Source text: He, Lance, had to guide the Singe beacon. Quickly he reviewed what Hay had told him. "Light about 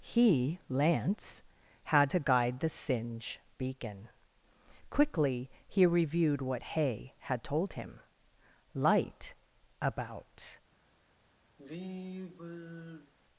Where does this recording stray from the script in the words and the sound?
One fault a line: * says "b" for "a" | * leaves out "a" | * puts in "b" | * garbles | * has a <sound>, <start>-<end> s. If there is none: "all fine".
* has a sigh, 11.6-13.1 s